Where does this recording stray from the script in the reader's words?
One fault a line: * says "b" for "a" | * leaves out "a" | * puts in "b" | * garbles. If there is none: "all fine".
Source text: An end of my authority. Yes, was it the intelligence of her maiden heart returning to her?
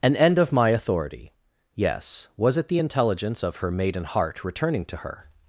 all fine